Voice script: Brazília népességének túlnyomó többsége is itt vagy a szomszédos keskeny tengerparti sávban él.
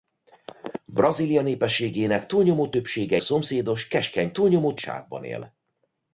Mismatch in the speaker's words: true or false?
true